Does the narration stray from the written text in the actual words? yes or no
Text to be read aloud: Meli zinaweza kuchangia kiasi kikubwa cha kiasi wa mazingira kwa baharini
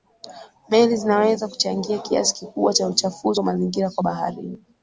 yes